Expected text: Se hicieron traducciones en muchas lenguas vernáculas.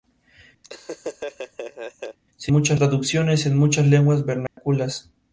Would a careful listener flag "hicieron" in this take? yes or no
yes